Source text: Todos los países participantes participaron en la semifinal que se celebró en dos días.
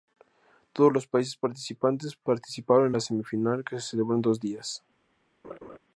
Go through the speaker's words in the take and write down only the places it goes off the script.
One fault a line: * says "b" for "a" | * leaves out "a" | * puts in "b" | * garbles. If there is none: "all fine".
all fine